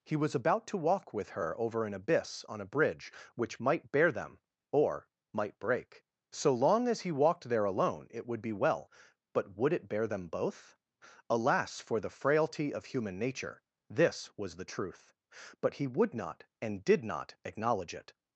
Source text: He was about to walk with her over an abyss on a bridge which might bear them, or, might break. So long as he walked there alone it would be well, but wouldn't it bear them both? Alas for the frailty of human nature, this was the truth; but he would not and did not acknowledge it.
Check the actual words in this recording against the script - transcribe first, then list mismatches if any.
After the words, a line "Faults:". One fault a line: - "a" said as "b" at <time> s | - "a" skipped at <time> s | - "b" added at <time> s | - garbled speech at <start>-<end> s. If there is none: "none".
He was about to walk with her over an abyss on a bridge which might bear them, or, might break. So long as he walked there alone it would be well, but would it bear them both? Alas for the frailty of human nature, this was the truth; but he would not and did not acknowledge it.
Faults:
- "wouldn't" said as "would" at 9.6 s